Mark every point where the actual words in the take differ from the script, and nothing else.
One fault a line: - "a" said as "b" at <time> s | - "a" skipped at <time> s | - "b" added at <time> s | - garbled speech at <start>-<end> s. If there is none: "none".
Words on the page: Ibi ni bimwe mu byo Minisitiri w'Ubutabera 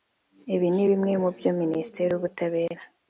none